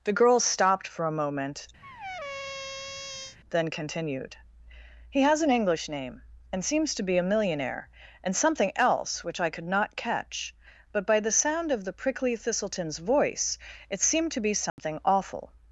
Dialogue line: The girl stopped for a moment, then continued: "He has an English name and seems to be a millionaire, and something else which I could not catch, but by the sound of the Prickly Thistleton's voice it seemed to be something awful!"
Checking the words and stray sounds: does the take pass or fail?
fail